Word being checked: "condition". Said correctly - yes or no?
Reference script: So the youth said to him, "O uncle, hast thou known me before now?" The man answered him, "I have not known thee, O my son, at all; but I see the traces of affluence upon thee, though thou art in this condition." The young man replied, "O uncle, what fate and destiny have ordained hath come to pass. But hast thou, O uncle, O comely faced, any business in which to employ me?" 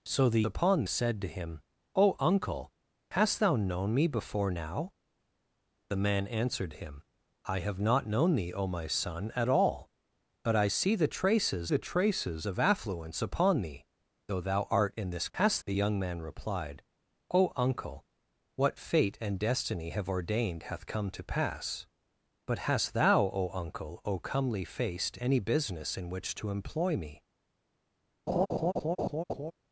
no